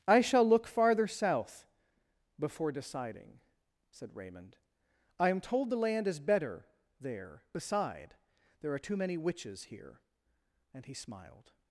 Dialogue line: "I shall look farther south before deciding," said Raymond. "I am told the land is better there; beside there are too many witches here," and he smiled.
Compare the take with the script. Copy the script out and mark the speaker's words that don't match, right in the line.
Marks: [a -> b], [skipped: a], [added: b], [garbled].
"I shall look farther south before deciding," said Raymond. "I am told the land is better there; beside there are too many witches here," and he smiled.